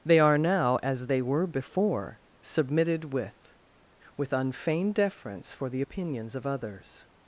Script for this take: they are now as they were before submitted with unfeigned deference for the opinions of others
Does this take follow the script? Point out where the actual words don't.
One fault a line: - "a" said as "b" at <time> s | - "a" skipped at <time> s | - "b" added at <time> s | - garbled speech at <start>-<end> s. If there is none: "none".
- "with" added at 4.2 s